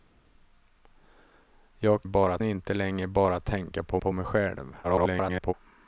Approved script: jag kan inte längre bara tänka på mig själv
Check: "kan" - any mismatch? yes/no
yes